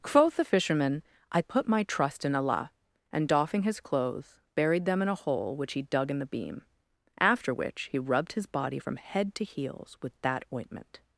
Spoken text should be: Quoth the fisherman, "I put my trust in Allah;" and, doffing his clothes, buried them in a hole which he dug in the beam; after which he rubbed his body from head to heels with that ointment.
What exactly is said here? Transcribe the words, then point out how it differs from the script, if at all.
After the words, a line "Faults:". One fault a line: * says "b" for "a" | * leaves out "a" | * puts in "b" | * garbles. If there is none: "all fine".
Quoth the fisherman, "I put my trust in Allah;" and, doffing his clothes, buried them in a hole which he dug in the beam; after which he rubbed his body from head to heels with that ointment.
Faults:
all fine